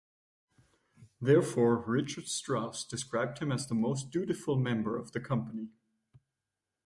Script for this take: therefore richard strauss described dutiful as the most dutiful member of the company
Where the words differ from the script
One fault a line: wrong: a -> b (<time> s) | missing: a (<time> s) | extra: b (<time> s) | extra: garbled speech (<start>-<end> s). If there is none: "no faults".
wrong: dutiful -> him (3.4 s)